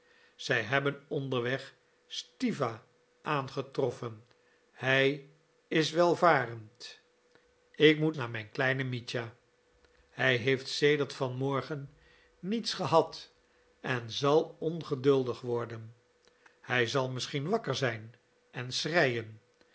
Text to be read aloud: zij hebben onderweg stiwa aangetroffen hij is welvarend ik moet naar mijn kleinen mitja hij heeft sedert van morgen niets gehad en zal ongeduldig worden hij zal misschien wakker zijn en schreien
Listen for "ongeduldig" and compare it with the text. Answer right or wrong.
right